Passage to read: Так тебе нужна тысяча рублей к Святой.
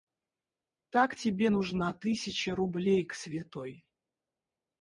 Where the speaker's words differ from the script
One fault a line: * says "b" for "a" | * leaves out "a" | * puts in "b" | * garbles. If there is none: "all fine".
all fine